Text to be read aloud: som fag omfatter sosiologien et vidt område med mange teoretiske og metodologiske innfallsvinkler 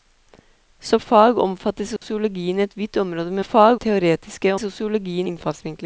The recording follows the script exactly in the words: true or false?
false